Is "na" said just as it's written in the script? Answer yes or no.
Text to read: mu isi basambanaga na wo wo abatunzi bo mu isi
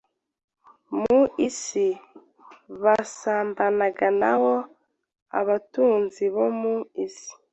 yes